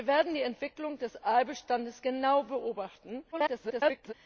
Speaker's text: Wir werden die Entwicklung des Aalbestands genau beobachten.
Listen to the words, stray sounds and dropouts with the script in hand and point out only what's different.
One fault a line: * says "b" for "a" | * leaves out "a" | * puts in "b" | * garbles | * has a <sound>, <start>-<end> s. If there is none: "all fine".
* garbles